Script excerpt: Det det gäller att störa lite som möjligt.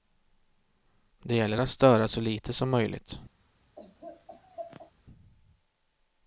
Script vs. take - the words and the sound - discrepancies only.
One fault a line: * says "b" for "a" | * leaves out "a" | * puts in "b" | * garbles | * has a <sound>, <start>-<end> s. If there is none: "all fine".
* leaves out "det"
* puts in "så"
* has a laugh, 3.8-4.9 s